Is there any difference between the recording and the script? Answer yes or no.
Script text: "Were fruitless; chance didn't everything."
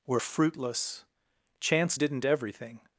no